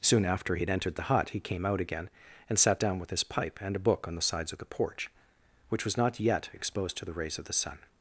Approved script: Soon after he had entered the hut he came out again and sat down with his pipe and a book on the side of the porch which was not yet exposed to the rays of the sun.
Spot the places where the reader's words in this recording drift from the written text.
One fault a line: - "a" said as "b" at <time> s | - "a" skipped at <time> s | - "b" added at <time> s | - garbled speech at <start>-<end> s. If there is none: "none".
- "side" said as "sides" at 4.2 s